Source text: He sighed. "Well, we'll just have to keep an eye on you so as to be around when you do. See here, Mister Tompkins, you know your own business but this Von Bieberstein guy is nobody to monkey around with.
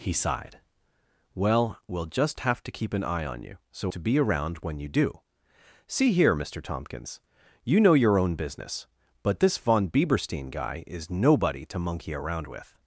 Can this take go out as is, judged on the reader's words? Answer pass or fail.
fail